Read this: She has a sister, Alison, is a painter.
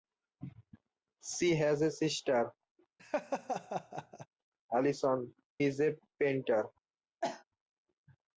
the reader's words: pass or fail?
pass